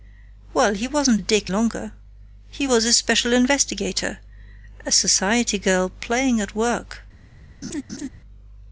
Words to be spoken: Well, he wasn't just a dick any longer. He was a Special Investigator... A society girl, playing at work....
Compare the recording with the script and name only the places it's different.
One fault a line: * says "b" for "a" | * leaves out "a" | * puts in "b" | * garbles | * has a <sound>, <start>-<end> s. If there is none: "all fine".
* leaves out "just"
* leaves out "any"
* has a laugh, 7.6-8.1 s